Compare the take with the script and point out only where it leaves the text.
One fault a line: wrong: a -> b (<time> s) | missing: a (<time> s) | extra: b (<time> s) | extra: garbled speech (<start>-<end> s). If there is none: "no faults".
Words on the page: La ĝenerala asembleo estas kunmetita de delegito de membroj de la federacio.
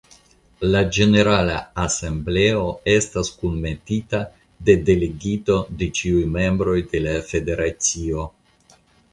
extra: ĉiuj (6.0 s)